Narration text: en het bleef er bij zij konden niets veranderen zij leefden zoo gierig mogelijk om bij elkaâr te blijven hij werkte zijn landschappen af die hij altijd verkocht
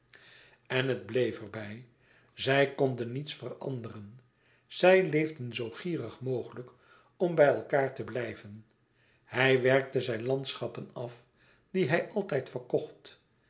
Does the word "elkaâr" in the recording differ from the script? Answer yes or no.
no